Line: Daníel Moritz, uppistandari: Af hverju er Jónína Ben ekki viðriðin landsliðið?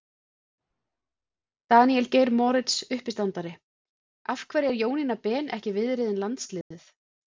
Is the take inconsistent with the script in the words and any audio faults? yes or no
yes